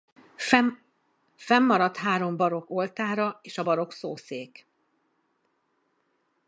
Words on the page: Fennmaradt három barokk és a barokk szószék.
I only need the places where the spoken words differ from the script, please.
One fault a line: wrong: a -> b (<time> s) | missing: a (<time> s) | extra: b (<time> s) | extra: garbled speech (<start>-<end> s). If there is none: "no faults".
extra: oltára (2.7 s)